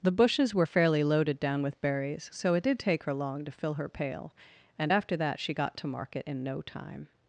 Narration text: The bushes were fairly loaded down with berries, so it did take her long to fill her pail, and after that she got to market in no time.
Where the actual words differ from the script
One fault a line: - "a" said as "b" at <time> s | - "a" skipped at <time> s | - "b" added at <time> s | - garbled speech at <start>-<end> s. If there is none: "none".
none